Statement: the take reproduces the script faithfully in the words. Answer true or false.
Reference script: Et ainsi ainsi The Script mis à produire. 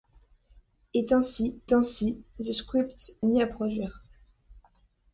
true